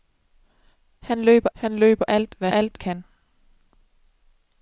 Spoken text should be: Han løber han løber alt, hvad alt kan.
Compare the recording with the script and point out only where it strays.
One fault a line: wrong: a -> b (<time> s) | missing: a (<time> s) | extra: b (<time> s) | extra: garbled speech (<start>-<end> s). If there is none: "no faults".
no faults